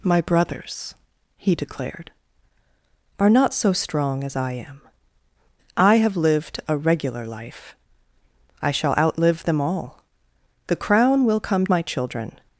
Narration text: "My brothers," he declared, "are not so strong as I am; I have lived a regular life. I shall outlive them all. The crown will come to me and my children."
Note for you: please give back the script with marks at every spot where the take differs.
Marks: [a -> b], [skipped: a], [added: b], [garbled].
"My brothers," he declared, "are not so strong as I am; I have lived a regular life. I shall outlive them all. The crown will come [skipped: to me and] my children."